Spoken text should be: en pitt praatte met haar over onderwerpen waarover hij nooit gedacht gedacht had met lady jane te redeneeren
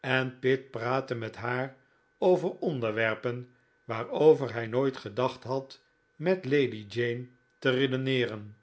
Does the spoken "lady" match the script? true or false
true